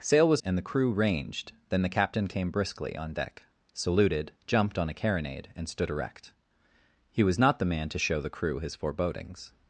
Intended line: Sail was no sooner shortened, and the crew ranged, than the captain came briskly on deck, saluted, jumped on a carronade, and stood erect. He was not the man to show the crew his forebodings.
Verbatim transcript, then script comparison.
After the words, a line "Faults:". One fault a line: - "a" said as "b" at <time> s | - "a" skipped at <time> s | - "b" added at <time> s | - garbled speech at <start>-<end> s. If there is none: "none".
Sail was and the crew ranged, than the captain came briskly on deck, saluted, jumped on a carronade, and stood erect. He was not the man to show the crew his forebodings.
Faults:
- "no sooner shortened" skipped at 0.4 s